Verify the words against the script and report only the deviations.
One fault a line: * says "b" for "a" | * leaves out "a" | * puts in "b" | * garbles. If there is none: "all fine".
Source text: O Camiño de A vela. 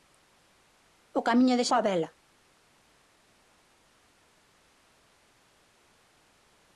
all fine